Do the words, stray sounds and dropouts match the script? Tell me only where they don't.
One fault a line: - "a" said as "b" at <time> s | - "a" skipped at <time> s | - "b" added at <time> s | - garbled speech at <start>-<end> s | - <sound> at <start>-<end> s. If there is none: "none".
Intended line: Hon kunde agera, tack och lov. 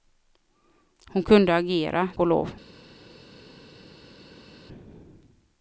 - "tack" skipped at 2.1 s